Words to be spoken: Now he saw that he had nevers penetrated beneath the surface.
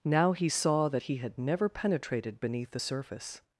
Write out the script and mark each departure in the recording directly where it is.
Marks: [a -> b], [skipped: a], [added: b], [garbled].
Now he saw that he had [nevers -> never] penetrated beneath the surface.